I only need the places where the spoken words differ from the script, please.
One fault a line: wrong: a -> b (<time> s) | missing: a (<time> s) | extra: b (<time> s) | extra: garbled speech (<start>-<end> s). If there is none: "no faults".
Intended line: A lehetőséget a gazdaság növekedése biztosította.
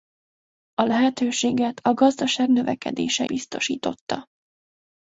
no faults